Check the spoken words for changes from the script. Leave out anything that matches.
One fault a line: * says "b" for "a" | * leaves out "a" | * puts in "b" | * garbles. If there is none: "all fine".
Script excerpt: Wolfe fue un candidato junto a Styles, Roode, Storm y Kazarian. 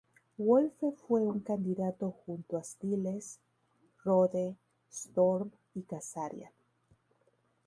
all fine